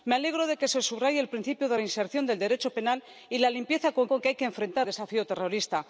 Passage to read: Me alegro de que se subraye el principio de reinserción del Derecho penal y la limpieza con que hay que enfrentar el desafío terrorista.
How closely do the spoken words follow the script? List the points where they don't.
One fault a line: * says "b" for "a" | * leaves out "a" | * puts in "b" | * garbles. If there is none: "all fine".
* puts in "con"
* leaves out "el"